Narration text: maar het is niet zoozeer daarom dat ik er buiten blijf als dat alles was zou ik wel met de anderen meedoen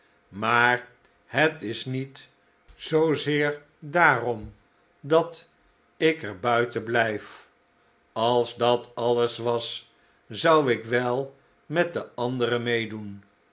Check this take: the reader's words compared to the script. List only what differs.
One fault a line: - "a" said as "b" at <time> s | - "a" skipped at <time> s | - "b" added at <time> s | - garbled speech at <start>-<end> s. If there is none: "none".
none